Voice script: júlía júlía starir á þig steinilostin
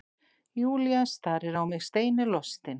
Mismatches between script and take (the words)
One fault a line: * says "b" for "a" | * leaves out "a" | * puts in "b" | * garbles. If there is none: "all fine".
* leaves out "júlía"
* says "mig" for "þig"